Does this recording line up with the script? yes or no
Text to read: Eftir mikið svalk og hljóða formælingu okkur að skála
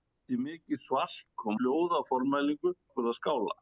yes